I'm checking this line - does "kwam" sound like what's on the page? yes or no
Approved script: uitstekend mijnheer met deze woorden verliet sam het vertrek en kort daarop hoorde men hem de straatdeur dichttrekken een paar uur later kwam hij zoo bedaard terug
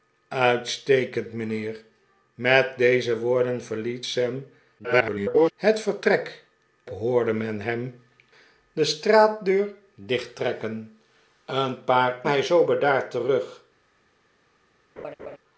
no